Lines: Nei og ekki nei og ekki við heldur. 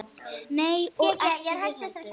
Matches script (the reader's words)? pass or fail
fail